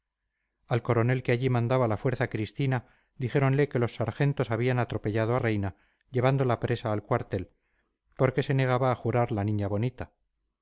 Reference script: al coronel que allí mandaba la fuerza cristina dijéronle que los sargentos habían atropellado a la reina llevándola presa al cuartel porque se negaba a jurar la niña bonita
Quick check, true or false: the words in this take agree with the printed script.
false